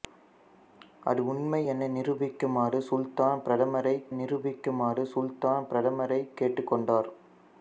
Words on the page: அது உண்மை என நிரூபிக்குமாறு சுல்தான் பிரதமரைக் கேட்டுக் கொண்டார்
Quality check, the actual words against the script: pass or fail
fail